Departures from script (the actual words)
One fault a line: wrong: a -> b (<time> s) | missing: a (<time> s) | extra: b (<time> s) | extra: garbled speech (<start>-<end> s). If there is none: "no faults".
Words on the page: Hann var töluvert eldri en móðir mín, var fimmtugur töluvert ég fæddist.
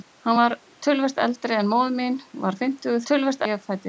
no faults